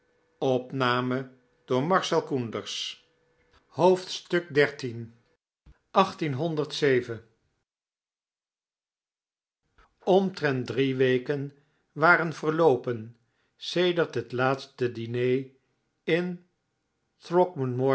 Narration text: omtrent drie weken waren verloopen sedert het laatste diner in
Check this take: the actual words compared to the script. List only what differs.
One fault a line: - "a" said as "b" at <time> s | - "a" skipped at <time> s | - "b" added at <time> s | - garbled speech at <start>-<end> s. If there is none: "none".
none